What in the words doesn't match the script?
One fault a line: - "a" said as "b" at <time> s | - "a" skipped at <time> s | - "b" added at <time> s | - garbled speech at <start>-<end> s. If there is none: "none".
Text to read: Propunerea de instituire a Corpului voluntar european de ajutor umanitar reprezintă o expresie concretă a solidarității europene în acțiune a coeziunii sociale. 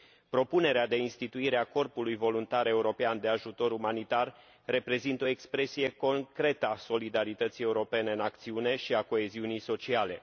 - "și" added at 8.8 s